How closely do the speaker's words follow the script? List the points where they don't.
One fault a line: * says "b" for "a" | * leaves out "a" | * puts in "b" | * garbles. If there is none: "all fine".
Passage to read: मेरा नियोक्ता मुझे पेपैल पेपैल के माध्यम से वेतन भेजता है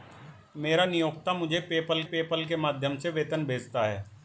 all fine